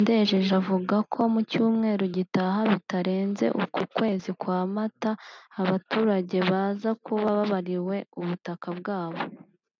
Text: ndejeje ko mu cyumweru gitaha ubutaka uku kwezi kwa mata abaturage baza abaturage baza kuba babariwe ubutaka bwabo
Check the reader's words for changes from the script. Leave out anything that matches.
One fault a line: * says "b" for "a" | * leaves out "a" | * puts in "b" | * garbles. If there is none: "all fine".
* puts in "avuga"
* says "bitarenze" for "ubutaka"
* leaves out "abaturage baza"